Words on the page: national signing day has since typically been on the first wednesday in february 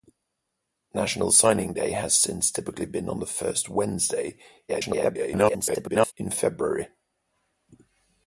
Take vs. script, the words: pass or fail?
fail